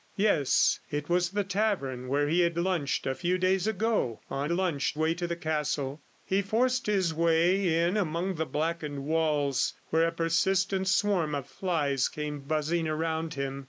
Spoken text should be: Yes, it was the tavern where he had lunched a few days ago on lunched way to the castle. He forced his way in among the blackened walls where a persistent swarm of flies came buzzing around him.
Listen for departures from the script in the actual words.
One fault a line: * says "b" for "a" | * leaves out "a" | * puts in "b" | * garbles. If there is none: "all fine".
all fine